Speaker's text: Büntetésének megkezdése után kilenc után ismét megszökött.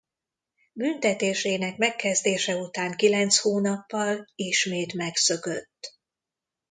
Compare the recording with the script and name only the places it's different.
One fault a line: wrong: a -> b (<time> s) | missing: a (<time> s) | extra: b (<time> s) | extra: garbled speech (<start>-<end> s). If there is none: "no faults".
wrong: után -> hónappal (3.4 s)